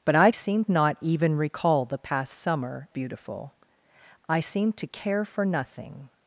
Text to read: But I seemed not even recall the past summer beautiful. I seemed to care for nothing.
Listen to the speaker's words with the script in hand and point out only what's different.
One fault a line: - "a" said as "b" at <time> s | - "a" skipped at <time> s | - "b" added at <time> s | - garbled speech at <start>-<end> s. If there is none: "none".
none